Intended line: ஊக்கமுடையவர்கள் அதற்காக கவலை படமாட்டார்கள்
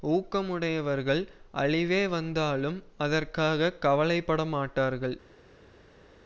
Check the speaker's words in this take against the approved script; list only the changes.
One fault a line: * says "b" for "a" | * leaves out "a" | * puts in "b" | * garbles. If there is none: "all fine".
* puts in "அழிவே வந்தாலும்"